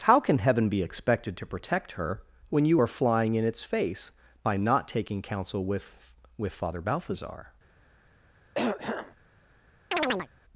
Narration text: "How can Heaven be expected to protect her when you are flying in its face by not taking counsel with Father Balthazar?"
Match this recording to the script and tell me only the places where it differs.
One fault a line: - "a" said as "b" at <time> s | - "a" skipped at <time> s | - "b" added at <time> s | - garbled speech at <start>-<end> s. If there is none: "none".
- "with" added at 6.4 s